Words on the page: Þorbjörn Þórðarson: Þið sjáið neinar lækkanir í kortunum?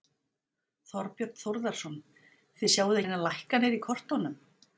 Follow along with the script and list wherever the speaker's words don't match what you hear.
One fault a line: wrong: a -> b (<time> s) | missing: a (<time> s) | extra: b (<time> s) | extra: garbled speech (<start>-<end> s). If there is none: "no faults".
no faults